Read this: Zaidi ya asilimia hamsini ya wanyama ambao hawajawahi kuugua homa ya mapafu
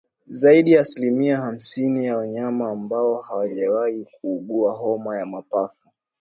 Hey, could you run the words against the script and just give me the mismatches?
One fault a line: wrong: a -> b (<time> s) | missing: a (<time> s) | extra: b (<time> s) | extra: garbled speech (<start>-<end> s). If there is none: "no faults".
no faults